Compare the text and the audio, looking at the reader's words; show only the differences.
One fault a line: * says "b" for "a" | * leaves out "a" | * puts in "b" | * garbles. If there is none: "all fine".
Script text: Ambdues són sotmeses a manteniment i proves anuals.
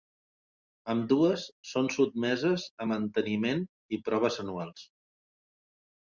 all fine